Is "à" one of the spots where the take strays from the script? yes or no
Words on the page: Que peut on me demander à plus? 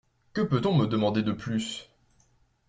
yes